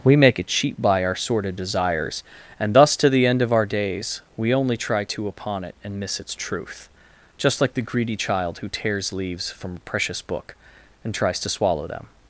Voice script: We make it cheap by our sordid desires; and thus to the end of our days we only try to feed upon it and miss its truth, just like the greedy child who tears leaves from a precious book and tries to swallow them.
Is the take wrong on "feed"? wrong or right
wrong